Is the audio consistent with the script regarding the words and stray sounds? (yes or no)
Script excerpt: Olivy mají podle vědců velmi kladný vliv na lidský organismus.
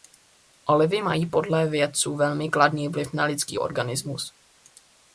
yes